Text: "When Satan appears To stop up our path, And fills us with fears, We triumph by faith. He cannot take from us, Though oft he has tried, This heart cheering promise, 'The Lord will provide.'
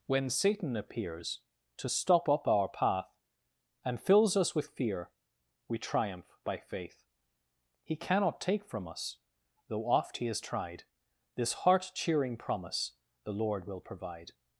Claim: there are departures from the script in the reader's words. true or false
true